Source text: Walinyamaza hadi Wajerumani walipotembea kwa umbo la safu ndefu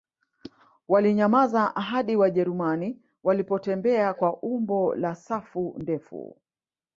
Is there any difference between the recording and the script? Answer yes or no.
no